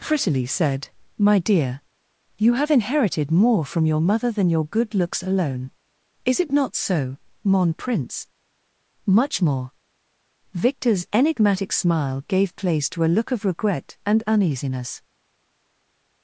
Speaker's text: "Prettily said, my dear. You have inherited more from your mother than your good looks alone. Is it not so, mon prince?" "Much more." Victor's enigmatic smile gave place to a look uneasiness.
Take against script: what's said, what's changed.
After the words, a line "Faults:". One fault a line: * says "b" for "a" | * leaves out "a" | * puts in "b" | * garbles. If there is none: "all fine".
"Prettily said, my dear. You have inherited more from your mother than your good looks alone. Is it not so, mon prince?" "Much more." Victor's enigmatic smile gave place to a look of regret and uneasiness.
Faults:
* puts in "of regret and"